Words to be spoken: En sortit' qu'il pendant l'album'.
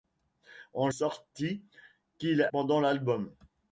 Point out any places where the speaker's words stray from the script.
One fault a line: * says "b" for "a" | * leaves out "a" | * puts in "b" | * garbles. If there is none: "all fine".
all fine